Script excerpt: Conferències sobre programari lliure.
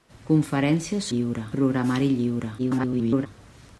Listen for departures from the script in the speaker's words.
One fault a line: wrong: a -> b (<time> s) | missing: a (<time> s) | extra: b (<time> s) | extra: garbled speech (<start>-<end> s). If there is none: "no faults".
wrong: sobre -> lliure (1.1 s)
extra: garbled speech (2.6-3.3 s)